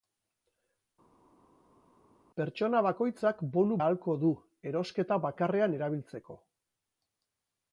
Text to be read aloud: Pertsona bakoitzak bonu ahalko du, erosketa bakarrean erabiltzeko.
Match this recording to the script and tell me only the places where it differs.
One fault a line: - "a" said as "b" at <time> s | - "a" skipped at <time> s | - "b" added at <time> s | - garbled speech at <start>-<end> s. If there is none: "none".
none